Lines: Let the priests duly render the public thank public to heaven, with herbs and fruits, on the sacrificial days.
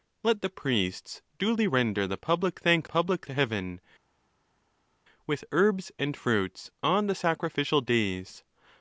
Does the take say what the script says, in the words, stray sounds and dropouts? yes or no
yes